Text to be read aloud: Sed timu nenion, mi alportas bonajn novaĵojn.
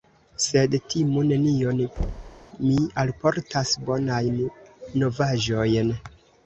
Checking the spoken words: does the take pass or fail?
pass